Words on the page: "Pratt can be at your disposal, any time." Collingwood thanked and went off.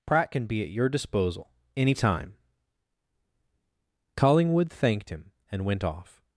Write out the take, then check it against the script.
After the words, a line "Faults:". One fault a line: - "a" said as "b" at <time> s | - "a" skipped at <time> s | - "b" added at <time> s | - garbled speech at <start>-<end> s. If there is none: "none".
"Pratt can be at your disposal, any time." Collingwood thanked him and went off.
Faults:
- "him" added at 5.1 s